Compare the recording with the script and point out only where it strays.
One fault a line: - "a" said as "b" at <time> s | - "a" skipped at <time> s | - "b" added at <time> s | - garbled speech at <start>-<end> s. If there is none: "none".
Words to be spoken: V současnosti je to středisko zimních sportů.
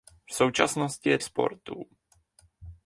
- "to středisko zimních" skipped at 1.2 s